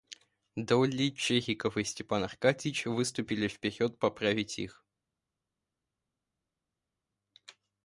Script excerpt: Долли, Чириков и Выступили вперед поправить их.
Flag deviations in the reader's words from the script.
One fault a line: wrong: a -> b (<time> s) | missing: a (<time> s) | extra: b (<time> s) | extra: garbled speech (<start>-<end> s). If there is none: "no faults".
extra: Степан Аркадьич (1.8 s)